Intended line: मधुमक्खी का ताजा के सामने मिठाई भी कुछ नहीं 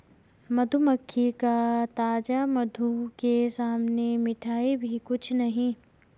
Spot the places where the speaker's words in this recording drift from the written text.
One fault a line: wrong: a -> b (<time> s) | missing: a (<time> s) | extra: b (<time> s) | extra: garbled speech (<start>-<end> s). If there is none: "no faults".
extra: मधु (2.5 s)